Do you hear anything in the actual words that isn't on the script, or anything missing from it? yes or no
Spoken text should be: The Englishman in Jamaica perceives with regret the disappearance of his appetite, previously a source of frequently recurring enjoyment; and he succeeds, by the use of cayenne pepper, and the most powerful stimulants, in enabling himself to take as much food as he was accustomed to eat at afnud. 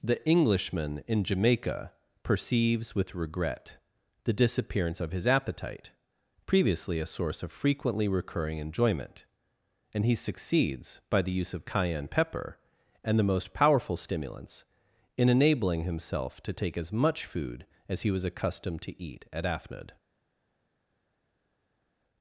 no